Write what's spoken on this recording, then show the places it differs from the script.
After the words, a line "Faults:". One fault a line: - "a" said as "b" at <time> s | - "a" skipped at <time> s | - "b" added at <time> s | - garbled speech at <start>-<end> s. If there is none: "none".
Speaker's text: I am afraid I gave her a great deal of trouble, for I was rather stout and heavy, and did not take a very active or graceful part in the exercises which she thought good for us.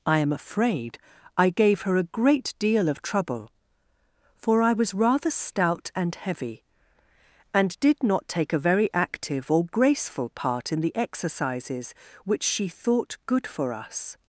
I am afraid I gave her a great deal of trouble, for I was rather stout and heavy, and did not take a very active or graceful part in the exercises which she thought good for us.
Faults:
none